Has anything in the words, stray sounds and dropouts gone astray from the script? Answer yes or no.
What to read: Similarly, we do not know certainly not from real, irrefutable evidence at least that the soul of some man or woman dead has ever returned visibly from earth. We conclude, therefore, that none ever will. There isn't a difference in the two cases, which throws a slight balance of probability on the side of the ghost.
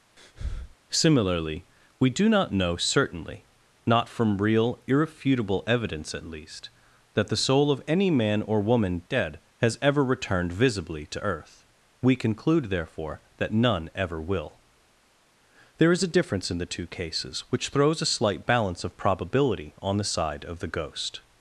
yes